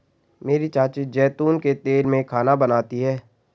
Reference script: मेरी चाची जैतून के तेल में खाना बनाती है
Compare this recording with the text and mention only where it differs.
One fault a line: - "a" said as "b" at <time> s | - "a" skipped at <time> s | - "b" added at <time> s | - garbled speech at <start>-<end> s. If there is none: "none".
none